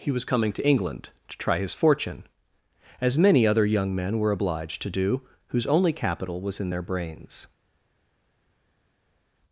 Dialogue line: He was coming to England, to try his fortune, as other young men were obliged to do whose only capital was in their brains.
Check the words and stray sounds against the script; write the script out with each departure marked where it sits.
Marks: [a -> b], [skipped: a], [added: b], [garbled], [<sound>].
He was coming to England, to try his fortune, as [added: many] other young men were obliged to do whose only capital was in their brains.